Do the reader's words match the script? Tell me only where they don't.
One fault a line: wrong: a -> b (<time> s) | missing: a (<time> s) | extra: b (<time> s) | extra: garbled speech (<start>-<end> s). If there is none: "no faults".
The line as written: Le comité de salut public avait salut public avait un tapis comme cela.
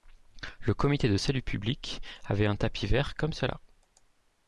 missing: salut public avait (2.5 s)
extra: vert (2.9 s)